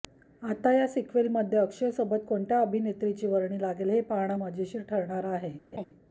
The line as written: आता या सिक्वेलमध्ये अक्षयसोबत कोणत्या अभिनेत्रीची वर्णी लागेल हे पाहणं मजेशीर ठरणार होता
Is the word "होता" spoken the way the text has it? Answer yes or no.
no